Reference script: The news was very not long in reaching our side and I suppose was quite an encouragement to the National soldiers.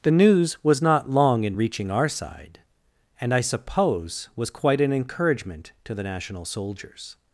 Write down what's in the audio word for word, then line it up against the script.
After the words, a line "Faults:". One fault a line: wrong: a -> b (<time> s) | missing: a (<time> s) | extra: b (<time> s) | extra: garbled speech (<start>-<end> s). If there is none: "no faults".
The news was not long in reaching our side and I suppose was quite an encouragement to the National soldiers.
Faults:
missing: very (0.8 s)